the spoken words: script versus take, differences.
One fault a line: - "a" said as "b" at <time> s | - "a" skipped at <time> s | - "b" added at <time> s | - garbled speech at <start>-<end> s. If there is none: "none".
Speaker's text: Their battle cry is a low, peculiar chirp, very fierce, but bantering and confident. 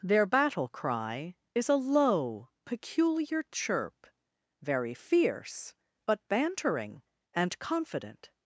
none